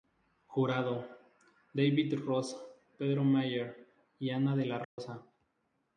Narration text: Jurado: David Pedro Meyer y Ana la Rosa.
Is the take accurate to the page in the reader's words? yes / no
no